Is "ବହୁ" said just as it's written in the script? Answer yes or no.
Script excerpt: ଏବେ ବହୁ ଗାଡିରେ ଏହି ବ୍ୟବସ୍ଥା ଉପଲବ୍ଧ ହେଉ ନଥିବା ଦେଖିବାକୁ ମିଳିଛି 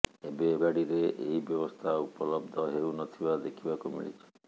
no